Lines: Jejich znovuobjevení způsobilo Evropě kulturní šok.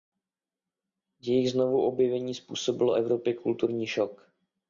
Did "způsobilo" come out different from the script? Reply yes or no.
no